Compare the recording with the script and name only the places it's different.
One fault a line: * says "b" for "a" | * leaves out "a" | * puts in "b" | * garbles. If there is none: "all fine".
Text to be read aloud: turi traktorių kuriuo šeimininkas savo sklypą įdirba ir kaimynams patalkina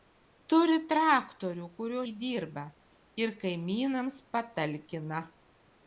* leaves out "šeimininkas savo sklypą"